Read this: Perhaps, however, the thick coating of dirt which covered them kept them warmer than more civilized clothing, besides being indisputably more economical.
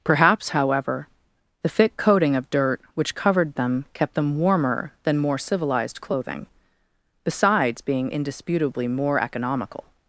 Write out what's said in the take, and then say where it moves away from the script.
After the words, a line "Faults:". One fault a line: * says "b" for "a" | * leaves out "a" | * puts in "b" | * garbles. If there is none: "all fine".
Perhaps, however, the thick coating of dirt which covered them kept them warmer than more civilized clothing, besides being indisputably more economical.
Faults:
all fine